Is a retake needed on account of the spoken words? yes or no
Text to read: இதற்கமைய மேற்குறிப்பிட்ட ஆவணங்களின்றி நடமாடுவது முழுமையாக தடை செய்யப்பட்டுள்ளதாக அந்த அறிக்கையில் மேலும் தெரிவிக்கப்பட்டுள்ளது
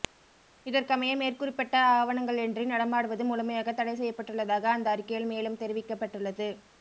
no